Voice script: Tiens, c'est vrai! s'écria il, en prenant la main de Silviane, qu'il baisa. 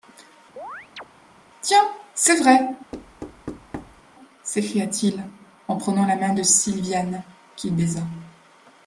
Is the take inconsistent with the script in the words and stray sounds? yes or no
yes